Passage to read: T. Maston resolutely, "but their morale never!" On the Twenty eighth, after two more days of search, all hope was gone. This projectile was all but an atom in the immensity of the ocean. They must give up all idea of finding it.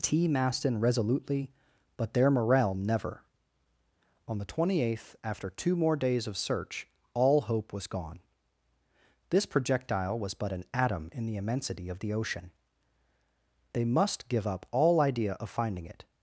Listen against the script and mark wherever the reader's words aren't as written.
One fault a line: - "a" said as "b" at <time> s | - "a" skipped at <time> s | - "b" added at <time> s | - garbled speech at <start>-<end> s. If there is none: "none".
- "all" skipped at 10.3 s